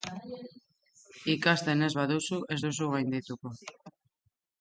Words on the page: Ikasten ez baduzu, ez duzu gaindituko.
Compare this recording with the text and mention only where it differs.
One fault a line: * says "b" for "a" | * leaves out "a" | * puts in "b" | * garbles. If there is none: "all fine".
all fine